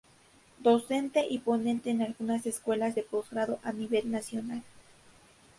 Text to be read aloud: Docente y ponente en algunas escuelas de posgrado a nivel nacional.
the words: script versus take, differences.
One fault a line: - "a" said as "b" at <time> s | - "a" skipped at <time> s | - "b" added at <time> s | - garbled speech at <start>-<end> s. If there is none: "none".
none